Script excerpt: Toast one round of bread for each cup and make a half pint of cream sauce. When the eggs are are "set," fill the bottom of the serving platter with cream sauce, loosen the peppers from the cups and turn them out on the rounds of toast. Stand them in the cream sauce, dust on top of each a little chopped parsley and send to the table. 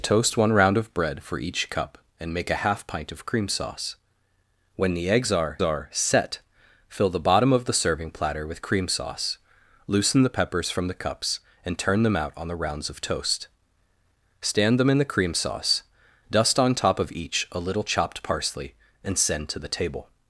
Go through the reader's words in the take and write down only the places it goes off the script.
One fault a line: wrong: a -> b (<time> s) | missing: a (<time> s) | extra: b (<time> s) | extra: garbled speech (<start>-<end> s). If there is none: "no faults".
no faults